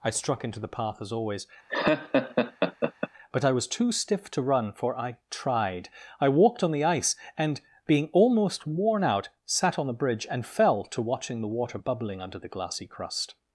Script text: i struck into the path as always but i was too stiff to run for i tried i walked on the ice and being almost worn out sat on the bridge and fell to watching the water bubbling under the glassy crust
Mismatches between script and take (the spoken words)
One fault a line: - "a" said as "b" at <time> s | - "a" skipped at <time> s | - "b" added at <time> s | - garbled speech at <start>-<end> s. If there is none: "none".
none